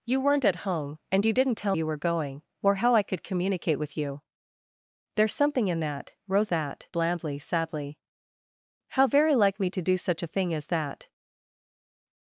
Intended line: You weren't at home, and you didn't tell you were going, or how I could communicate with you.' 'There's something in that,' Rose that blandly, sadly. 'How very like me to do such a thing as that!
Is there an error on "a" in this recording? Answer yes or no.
no